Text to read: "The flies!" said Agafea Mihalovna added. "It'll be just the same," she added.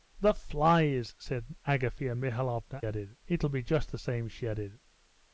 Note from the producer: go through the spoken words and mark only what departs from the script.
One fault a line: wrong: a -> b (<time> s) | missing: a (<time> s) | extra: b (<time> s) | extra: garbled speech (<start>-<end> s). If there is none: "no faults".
no faults